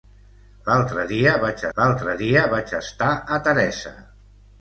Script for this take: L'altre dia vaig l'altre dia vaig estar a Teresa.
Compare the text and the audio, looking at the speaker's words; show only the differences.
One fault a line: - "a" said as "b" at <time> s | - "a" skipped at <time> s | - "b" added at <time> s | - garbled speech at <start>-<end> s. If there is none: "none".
none